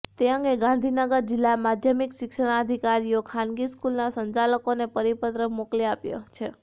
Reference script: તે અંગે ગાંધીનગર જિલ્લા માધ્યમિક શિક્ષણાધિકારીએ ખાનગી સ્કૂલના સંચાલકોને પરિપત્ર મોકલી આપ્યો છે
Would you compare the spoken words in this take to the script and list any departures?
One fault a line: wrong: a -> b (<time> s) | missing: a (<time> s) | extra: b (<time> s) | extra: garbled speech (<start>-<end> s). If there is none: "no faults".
no faults